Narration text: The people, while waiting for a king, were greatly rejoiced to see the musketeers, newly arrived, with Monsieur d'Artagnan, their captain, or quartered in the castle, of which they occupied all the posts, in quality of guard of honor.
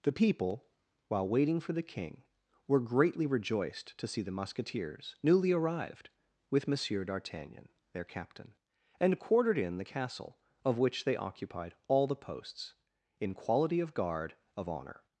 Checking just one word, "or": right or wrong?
wrong